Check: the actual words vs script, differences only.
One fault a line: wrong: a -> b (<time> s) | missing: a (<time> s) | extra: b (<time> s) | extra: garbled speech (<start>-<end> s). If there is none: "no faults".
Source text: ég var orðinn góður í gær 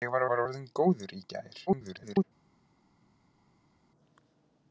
extra: var (0.3 s)
extra: garbled speech (1.7-2.2 s)